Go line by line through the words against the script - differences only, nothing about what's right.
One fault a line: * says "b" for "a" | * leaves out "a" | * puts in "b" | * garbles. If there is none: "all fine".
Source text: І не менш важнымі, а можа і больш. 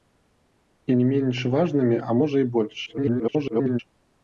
* garbles